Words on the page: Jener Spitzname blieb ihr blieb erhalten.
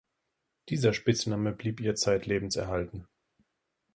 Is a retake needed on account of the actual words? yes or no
yes